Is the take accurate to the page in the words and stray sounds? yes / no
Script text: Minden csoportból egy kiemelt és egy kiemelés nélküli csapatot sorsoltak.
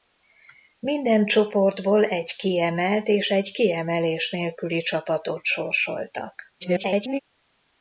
no